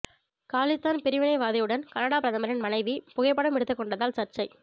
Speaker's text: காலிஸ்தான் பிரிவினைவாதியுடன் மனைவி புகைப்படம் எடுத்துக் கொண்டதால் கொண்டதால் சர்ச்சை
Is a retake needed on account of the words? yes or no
yes